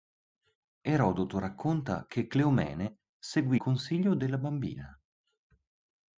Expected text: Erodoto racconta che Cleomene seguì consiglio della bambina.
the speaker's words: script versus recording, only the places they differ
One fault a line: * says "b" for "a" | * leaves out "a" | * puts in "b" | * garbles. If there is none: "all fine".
all fine